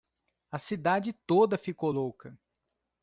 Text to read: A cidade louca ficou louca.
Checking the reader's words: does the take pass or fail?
fail